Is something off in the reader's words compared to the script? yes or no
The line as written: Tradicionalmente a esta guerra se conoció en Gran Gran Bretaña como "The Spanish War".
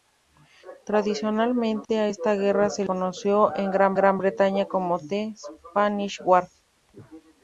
no